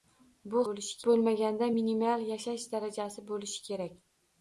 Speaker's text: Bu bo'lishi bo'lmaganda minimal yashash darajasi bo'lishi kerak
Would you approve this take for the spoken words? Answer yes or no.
yes